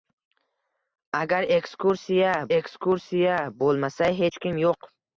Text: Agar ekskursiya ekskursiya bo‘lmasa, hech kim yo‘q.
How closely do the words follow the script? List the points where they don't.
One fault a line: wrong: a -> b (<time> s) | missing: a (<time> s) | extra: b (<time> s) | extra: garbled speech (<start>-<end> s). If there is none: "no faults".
no faults